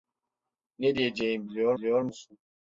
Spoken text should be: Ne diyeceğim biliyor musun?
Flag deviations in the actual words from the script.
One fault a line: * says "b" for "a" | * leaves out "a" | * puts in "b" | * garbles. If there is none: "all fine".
* puts in "biliyor"